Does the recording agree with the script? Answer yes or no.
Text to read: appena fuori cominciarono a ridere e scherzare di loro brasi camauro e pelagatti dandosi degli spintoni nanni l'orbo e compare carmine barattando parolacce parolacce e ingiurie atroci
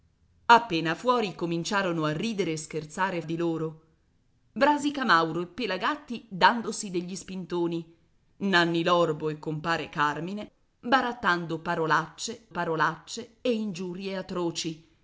yes